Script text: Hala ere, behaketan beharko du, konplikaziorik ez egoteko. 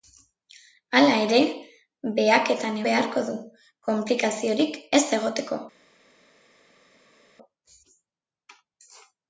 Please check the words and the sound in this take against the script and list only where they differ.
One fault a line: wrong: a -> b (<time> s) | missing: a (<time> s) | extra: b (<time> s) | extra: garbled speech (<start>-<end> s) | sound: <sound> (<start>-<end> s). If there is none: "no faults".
no faults